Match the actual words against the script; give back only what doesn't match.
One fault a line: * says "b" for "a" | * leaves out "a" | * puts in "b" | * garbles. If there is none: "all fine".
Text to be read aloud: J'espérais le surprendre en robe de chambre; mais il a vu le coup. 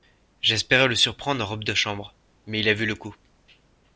all fine